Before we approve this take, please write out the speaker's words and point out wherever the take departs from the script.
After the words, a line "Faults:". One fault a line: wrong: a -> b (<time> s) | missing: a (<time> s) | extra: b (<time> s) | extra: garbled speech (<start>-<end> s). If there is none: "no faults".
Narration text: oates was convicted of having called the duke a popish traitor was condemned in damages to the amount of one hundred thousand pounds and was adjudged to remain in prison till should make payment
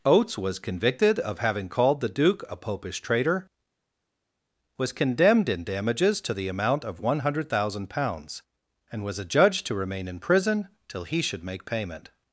oates was convicted of having called the duke a popish traitor was condemned in damages to the amount of one hundred thousand pounds and was adjudged to remain in prison till he should make payment
Faults:
extra: he (11.0 s)